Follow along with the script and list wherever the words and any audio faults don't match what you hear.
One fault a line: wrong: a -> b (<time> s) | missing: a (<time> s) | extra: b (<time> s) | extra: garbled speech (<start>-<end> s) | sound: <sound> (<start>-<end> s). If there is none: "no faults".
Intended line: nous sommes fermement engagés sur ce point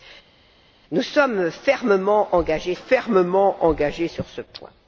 extra: fermement engagés (2.7 s)